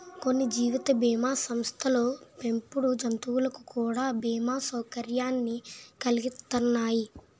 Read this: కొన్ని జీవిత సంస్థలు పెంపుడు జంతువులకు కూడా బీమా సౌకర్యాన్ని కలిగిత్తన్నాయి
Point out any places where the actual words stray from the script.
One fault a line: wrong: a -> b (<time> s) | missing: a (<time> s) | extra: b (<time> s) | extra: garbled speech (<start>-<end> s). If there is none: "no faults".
extra: బీమా (1.0 s)